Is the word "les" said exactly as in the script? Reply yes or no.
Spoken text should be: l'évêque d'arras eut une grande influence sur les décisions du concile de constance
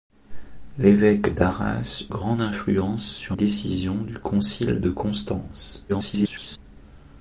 no